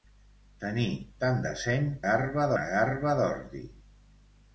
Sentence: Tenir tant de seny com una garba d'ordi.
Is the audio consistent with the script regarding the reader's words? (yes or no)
no